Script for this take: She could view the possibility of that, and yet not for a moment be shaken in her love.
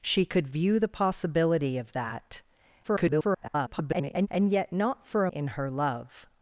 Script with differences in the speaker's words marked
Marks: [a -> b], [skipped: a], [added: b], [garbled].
She could view the possibility of that, [garbled] and yet not for a [skipped: moment be shaken] in her love.